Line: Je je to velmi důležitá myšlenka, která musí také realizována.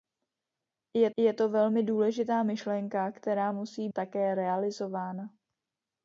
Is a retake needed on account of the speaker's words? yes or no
no